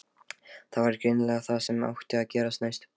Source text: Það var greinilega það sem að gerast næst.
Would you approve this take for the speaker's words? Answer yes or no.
no